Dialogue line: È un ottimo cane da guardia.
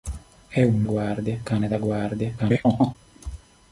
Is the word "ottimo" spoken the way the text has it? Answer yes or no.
no